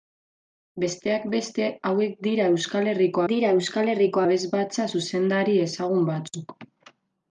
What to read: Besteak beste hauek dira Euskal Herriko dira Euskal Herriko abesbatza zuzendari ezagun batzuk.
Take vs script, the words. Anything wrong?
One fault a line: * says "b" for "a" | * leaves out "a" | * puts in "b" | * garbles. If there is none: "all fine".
all fine